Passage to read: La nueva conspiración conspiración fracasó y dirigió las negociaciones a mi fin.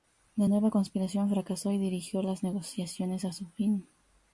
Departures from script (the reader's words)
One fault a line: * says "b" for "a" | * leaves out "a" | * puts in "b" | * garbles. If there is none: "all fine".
* leaves out "conspiración"
* says "su" for "mi"